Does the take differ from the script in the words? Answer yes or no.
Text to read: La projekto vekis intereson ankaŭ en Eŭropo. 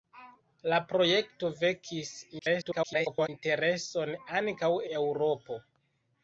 yes